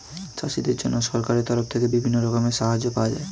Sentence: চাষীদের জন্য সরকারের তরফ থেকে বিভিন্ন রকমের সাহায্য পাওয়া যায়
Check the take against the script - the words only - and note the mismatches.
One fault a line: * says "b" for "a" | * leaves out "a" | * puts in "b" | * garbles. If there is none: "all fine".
all fine